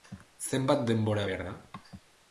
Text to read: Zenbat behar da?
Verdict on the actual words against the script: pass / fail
fail